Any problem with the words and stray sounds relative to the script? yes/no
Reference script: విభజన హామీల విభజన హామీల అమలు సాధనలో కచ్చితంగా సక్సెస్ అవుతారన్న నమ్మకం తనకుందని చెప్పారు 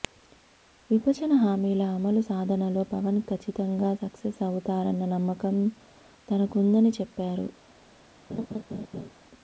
yes